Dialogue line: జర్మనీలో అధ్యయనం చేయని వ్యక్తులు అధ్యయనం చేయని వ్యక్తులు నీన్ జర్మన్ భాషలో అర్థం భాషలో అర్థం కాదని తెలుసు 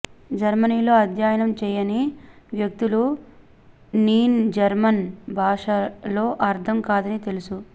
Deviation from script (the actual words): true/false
true